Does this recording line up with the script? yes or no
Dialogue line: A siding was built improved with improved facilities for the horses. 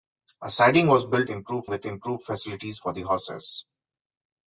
yes